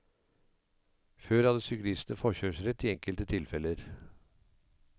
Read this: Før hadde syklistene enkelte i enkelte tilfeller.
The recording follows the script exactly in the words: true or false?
false